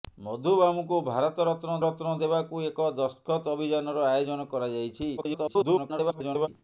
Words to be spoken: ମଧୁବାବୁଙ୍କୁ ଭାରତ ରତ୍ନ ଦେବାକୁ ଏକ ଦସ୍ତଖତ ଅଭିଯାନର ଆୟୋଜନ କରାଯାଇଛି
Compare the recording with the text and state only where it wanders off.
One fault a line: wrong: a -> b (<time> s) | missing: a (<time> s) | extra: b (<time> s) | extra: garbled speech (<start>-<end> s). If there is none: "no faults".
extra: ରତ୍ନ (1.9 s)
extra: garbled speech (5.2-6.5 s)